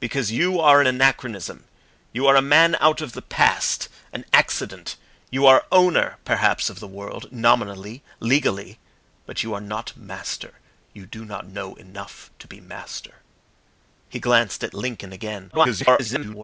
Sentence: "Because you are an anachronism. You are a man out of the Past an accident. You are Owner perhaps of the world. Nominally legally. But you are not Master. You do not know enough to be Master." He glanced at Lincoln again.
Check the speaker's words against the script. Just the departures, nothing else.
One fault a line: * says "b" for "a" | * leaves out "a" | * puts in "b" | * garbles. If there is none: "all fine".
* garbles